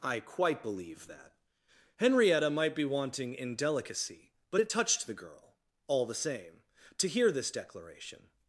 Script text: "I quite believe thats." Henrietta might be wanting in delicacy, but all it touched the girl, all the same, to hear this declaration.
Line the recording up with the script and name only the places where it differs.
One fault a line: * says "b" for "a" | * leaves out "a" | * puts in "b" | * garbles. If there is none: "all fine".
* says "that" for "thats"
* leaves out "all"